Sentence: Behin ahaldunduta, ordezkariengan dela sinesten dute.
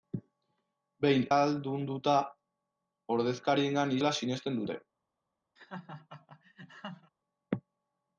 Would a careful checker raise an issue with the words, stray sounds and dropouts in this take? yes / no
yes